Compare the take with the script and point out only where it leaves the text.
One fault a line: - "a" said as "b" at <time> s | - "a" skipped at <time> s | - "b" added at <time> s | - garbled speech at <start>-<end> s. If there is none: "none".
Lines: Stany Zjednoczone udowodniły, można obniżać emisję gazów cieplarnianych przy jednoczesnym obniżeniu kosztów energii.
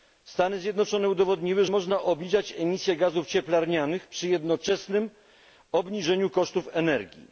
none